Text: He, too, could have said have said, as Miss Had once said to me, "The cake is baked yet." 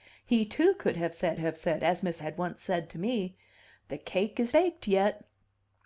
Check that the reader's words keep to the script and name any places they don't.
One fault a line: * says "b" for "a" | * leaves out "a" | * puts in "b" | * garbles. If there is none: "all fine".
all fine